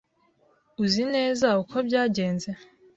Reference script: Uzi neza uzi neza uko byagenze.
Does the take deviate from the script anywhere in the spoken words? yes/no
yes